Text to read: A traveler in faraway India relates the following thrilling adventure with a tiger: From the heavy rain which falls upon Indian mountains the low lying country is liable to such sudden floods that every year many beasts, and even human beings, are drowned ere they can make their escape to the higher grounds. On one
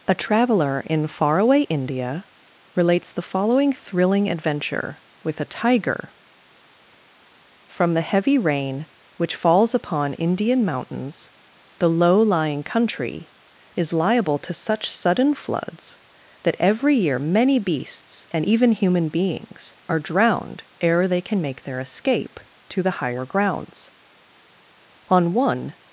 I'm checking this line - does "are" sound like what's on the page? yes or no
yes